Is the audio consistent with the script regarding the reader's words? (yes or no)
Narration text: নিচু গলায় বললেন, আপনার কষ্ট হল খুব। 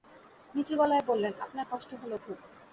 yes